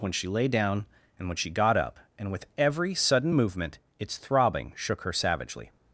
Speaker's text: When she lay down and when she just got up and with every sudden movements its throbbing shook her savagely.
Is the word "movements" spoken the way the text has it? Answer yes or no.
no